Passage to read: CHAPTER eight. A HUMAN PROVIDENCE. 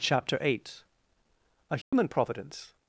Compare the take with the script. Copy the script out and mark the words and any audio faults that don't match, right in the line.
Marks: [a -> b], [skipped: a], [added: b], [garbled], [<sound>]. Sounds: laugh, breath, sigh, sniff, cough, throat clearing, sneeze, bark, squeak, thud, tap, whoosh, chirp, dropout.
CHAPTER eight. A HUMAN [dropout] PROVIDENCE.